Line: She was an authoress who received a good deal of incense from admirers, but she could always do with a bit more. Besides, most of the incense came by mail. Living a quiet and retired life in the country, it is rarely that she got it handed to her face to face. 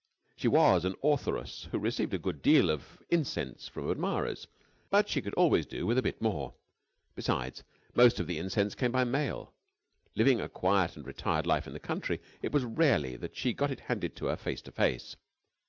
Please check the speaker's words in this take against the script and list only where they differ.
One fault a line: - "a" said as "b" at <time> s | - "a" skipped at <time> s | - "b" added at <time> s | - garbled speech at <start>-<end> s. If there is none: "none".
- "is" said as "was" at 12.5 s